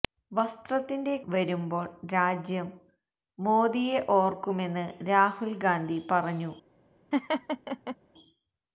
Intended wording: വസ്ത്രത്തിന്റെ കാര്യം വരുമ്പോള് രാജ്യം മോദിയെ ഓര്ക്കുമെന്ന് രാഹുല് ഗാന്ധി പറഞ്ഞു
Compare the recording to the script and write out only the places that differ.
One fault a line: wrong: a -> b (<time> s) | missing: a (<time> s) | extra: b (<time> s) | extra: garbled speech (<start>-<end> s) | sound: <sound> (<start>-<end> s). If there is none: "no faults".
missing: കാര്യം (1.1 s)
sound: laugh (7.1-8.0 s)